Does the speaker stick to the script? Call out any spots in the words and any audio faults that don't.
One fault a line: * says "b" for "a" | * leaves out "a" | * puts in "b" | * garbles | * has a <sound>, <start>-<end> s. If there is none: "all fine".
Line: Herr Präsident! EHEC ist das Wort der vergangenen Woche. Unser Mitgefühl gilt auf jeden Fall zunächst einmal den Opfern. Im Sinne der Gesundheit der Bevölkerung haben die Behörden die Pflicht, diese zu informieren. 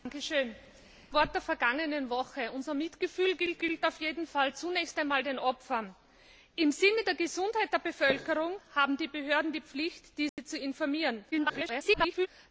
* leaves out "EHEC ist das"
* puts in "gilt"
* has a dropout, 10.3-10.4 s
* garbles